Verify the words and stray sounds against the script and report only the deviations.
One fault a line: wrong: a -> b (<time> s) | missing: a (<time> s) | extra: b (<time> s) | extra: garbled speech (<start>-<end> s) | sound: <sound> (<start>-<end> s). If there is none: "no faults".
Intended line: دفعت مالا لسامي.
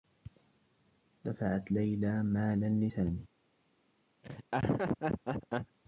extra: ليلى (1.7 s)
sound: laugh (4.2-5.8 s)